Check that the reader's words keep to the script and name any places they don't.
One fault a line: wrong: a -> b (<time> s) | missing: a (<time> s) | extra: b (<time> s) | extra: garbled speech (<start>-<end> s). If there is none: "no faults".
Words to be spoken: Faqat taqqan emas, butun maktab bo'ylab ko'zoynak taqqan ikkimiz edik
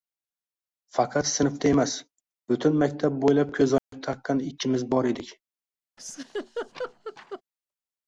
wrong: taqqan -> sinfda (1.3 s)
extra: bor (4.9 s)